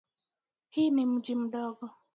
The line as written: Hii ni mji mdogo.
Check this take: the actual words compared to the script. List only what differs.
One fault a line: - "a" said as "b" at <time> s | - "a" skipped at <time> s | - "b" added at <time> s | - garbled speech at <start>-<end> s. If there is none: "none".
none